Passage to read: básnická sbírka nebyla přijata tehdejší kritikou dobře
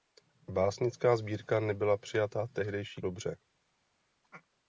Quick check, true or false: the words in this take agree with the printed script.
false